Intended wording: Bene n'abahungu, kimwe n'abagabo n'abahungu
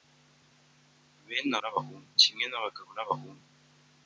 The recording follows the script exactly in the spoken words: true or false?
true